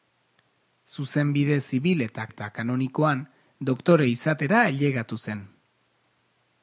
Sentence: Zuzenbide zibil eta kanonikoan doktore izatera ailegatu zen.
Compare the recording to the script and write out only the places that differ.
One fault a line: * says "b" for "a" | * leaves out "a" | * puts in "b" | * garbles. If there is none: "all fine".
* puts in "eta"